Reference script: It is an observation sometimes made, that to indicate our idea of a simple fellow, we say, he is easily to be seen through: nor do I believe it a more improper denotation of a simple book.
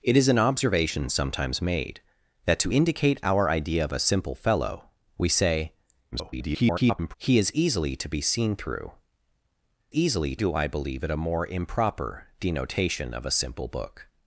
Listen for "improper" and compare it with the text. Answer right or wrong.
right